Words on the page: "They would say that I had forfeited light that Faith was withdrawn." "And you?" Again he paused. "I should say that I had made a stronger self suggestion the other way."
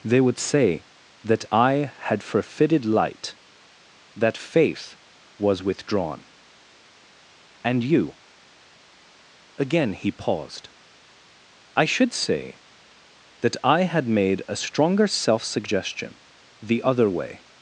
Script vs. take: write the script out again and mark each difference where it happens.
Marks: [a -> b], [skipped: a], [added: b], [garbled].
"They would say that I had forfeited light that Faith was withdrawn." "And you?" Again he paused. "I should say that I had made a stronger self suggestion the other way."